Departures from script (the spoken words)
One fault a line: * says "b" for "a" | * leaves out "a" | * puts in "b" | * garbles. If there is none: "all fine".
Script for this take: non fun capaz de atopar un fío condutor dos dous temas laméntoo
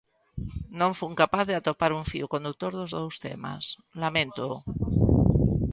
all fine